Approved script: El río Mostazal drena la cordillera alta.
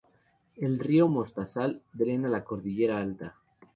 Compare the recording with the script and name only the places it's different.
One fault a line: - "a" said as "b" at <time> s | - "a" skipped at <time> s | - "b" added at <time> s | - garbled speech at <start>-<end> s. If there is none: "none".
none